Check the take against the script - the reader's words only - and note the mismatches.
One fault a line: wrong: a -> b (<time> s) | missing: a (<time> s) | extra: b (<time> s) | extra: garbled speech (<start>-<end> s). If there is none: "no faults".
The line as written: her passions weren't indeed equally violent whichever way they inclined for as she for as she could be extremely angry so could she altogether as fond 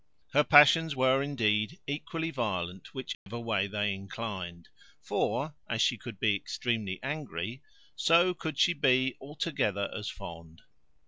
wrong: weren't -> were (0.9 s)
missing: for as she (6.0 s)
extra: be (8.7 s)